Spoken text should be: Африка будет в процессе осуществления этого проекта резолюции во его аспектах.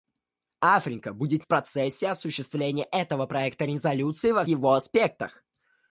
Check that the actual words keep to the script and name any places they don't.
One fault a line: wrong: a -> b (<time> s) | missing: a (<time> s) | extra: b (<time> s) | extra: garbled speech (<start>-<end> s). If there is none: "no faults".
no faults